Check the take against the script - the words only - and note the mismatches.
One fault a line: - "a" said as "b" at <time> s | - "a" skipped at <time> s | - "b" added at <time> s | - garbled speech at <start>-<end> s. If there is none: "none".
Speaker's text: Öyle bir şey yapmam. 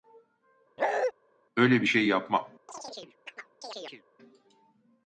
none